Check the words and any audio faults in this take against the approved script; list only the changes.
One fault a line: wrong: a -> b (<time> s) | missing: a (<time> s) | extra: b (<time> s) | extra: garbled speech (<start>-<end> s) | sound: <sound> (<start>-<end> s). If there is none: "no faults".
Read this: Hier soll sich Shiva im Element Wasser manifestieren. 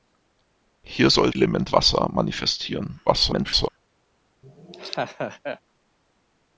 missing: sich Shiva im (1.3 s)
extra: garbled speech (3.1-3.7 s)
sound: laugh (4.4-5.6 s)